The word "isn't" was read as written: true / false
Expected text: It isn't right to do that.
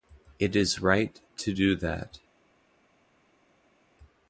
false